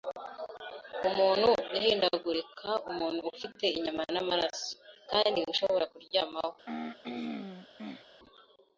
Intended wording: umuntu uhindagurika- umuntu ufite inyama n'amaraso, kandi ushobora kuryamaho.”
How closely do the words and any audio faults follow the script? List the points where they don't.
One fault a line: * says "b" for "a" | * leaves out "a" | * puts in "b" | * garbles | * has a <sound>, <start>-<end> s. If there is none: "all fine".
* has a throat clearing, 6.7-8.0 s